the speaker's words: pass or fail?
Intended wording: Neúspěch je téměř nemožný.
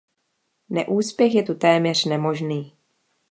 fail